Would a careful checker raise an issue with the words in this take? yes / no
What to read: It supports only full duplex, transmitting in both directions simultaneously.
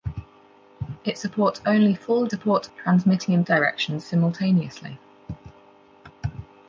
yes